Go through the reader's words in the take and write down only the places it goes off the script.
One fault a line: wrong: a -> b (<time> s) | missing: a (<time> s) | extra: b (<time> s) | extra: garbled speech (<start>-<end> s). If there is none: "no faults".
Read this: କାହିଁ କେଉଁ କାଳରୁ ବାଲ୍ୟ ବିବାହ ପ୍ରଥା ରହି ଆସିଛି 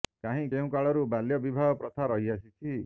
no faults